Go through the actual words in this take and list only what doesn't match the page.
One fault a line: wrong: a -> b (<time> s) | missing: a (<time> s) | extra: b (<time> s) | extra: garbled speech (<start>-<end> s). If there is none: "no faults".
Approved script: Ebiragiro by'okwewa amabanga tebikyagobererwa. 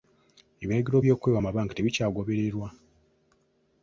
no faults